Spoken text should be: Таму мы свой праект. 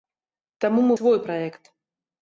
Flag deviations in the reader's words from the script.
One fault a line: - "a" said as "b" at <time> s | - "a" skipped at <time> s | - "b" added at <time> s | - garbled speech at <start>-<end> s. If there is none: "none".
none